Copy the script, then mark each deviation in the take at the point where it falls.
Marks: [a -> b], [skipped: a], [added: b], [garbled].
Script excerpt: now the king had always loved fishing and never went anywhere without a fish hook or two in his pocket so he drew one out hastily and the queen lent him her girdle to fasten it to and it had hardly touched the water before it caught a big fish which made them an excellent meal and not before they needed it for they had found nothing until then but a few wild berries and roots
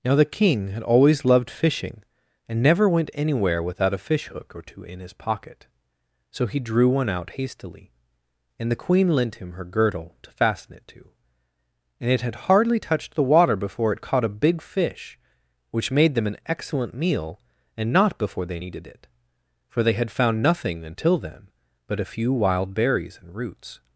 now the king had always loved fishing and never went anywhere without a fish hook or two in his pocket so he drew one out hastily and the queen lent him her girdle to fasten it to and it had hardly touched the water before it caught a big fish which made them an excellent meal and not before they needed it for they had found nothing until then but a few wild berries and roots